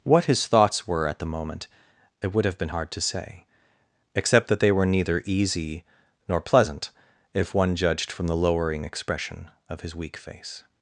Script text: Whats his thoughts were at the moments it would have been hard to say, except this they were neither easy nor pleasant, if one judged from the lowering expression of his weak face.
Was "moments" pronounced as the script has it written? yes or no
no